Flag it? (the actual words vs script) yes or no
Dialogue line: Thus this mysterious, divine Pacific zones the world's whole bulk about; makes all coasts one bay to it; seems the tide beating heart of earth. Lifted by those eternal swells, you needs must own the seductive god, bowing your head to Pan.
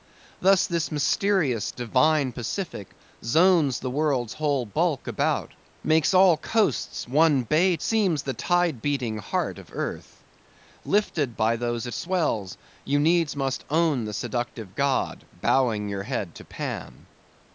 yes